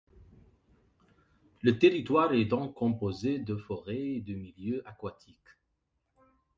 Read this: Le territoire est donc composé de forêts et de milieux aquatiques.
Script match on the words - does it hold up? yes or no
yes